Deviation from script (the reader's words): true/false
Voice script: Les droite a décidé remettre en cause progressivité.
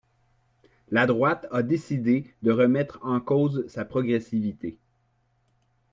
true